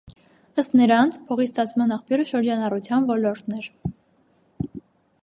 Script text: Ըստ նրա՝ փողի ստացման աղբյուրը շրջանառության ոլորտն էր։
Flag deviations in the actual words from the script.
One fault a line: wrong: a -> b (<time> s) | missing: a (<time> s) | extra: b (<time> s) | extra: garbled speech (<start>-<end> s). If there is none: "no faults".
wrong: նրա -> նրանց (0.8 s)